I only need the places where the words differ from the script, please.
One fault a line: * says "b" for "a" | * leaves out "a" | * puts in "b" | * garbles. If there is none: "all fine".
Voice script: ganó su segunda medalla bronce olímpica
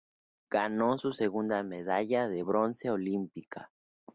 * puts in "de"